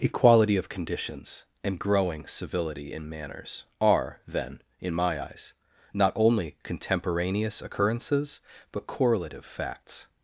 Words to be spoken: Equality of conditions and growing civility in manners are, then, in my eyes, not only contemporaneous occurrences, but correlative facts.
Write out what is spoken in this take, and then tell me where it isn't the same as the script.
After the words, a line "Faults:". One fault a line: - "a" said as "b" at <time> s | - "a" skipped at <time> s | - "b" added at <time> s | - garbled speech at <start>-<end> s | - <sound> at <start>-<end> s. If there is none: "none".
Equality of conditions and growing civility in manners are, then, in my eyes, not only contemporaneous occurrences, but correlative facts.
Faults:
none